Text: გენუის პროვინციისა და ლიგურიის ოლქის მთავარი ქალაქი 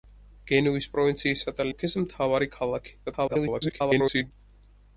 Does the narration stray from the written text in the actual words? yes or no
yes